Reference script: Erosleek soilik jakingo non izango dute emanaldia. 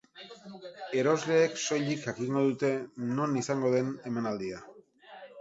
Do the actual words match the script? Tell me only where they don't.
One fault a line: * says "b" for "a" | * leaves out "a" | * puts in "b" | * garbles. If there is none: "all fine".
* puts in "dute"
* says "den" for "dute"